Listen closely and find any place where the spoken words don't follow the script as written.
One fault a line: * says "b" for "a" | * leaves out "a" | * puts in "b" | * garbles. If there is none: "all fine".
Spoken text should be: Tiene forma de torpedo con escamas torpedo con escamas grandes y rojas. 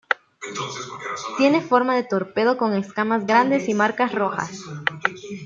* leaves out "torpedo con escamas"
* puts in "marcas"